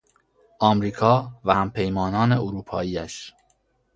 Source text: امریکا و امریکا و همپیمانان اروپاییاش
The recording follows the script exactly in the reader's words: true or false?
false